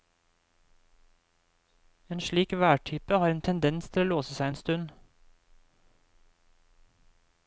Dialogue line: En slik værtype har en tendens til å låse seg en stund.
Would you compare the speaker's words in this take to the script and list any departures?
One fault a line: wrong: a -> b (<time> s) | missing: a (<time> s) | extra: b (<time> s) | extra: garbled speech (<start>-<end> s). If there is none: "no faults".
no faults